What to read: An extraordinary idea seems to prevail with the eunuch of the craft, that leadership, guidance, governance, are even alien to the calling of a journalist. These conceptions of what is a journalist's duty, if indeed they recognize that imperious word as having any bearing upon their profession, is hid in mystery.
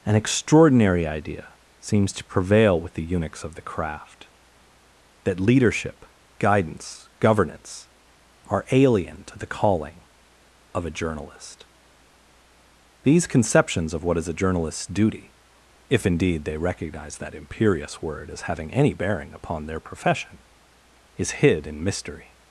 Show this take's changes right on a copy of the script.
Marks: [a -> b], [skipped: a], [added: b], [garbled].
An extraordinary idea seems to prevail with the [eunuch -> eunuchs] of the craft, that leadership, guidance, governance, are [skipped: even] alien to the calling of a journalist. These conceptions of what is a journalist's duty, if indeed they recognize that imperious word as having any bearing upon their profession, is hid in mystery.